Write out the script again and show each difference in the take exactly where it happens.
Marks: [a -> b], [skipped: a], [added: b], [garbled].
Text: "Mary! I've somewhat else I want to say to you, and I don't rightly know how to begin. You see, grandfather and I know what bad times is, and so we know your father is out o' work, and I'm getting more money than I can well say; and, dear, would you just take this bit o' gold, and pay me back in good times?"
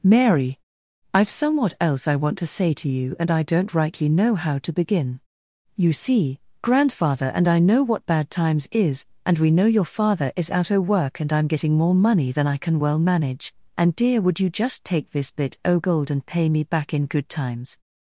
"Mary! I've somewhat else I want to say to you, and I don't rightly know how to begin. You see, grandfather and I know what bad times is, and [skipped: so] we know your father is out o' work, and I'm getting more money than I can well [say; -> manage] and, dear, would you just take this bit o' gold, and pay me back in good times?"